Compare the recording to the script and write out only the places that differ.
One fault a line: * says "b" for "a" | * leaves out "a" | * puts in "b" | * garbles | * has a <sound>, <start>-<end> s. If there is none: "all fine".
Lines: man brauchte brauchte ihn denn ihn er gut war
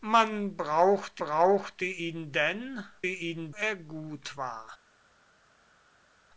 all fine